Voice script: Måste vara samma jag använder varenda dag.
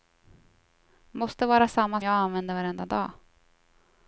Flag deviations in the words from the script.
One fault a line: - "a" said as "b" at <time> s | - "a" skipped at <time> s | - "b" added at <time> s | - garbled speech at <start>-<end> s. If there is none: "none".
none